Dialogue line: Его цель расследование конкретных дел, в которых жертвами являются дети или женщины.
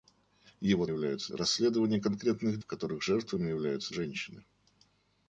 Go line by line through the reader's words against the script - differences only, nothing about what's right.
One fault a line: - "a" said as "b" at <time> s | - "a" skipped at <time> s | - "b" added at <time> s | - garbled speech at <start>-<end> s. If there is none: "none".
- "цель" said as "являются" at 0.9 s
- "дел" skipped at 2.6 s
- "дети или" skipped at 3.9 s